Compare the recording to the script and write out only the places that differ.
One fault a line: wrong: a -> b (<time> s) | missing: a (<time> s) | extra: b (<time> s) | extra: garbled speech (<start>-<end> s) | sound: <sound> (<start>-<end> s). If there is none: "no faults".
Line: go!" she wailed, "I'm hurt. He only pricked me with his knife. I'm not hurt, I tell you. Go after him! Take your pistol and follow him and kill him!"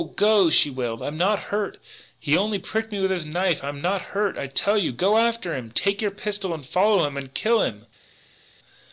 extra: not (1.1 s)